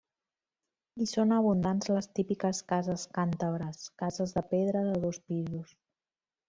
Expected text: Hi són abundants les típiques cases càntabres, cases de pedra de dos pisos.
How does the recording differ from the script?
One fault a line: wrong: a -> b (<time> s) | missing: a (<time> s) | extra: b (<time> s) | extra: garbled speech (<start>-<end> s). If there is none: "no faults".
no faults